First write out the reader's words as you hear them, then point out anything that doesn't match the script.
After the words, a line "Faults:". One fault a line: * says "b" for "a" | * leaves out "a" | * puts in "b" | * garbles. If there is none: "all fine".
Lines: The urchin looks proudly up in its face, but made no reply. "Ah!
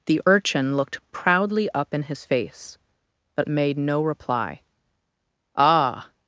The urchin looked proudly up in his face, but made no reply. "Ah!
Faults:
* says "looked" for "looks"
* says "his" for "its"